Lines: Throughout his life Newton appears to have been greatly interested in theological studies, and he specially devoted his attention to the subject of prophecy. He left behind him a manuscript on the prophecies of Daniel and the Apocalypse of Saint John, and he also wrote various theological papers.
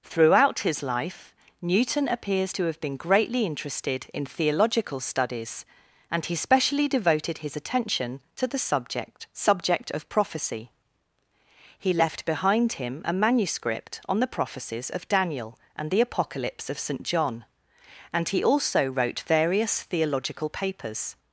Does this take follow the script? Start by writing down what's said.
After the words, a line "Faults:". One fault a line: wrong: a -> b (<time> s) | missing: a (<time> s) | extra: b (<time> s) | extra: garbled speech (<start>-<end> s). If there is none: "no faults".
Throughout his life Newton appears to have been greatly interested in theological studies, and he specially devoted his attention to the subject subject of prophecy. He left behind him a manuscript on the prophecies of Daniel and the Apocalypse of Saint John, and he also wrote various theological papers.
Faults:
extra: subject (9.3 s)